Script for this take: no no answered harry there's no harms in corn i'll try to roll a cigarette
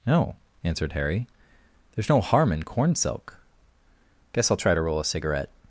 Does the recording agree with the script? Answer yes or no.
no